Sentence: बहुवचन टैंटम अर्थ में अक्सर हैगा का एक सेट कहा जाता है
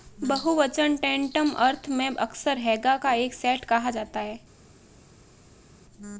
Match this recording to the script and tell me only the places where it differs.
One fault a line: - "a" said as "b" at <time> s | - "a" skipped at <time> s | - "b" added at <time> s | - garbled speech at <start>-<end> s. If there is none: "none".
none